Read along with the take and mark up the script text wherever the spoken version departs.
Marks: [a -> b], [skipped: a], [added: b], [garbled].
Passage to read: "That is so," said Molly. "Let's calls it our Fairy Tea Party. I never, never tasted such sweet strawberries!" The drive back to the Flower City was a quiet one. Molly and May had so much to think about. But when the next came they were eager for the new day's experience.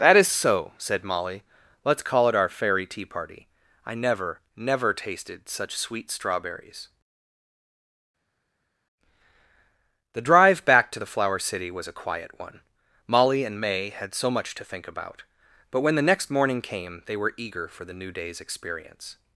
"That is so," said Molly. "Let's [calls -> call] it our Fairy Tea Party. I never, never tasted such sweet strawberries!" The drive back to the Flower City was a quiet one. Molly and May had so much to think about. But when the next [added: morning] came they were eager for the new day's experience.